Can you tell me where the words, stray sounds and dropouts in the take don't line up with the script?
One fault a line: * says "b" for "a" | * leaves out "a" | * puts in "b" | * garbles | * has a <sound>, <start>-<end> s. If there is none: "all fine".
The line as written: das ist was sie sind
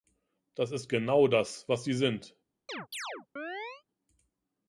* puts in "genau das"
* has a chirp, 2.7-3.8 s